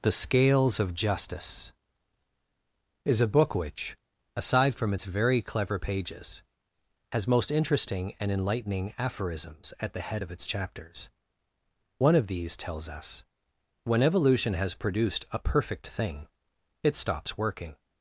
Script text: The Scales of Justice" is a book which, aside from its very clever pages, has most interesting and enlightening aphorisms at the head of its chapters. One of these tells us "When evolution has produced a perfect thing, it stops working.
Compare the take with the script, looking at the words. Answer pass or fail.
pass